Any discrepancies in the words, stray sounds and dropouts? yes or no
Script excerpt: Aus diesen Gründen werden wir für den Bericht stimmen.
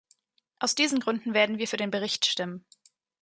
no